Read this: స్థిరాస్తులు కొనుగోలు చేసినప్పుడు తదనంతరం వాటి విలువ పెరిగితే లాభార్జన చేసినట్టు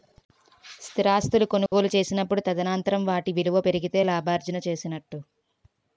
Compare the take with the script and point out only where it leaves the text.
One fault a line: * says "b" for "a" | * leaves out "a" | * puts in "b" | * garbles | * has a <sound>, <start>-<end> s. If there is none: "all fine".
* has a dropout, 1.7-1.7 s